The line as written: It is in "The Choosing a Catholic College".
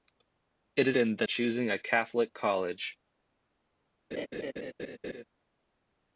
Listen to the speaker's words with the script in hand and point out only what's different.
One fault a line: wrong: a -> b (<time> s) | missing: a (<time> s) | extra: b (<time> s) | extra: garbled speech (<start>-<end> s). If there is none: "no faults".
no faults